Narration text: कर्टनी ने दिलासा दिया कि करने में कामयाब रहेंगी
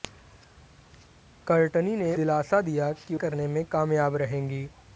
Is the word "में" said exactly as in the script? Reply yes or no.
yes